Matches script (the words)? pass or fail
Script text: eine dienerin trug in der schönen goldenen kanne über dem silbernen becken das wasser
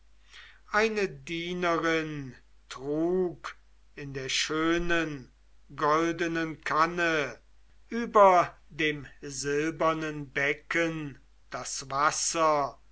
pass